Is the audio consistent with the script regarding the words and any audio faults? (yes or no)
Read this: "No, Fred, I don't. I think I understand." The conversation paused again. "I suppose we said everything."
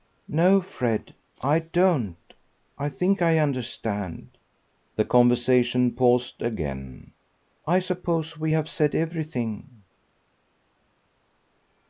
no